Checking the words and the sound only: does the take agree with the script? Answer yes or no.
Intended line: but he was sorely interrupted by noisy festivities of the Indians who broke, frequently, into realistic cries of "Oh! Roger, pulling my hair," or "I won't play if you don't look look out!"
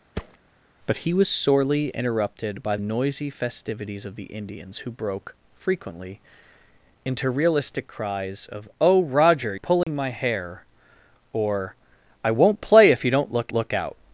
no